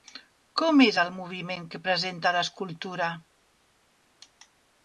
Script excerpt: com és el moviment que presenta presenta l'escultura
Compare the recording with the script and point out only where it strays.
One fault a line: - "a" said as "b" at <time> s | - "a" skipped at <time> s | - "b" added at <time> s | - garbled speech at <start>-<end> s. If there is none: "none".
- "presenta" skipped at 2.3 s